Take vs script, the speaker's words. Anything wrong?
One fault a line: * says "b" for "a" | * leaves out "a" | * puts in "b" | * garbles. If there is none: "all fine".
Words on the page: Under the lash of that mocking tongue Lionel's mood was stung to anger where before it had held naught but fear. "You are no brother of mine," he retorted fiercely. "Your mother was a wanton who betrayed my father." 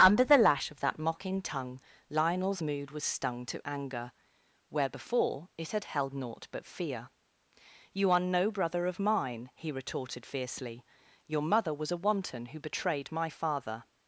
all fine